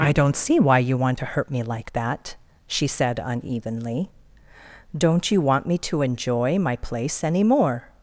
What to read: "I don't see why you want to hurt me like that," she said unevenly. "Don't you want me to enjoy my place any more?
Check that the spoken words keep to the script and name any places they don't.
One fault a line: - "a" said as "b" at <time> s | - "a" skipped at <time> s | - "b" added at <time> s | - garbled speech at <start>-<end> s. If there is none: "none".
none